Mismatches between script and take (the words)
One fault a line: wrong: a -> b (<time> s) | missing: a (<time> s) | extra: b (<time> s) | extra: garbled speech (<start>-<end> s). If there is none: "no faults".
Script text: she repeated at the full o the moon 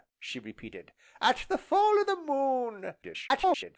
extra: garbled speech (3.0-3.8 s)